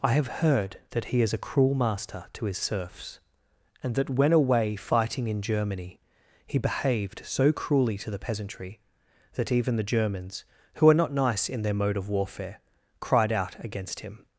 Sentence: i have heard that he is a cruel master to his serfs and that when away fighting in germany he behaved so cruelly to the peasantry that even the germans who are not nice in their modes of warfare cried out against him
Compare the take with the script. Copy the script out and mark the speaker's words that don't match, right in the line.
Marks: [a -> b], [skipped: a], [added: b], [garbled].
i have heard that he is a cruel master to his serfs and that when away fighting in germany he behaved so cruelly to the peasantry that even the germans who are not nice in their [modes -> mode] of warfare cried out against him